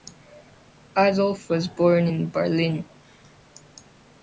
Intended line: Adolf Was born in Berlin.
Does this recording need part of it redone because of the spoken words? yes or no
no